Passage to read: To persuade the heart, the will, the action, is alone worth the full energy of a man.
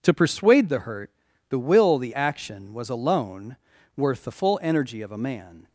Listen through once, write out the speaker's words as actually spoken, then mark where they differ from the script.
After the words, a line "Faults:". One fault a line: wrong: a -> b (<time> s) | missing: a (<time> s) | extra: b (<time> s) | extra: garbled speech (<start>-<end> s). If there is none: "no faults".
To persuade the hurt, the will, the action, was alone worth the full energy of a man.
Faults:
wrong: heart -> hurt (0.8 s)
wrong: is -> was (2.7 s)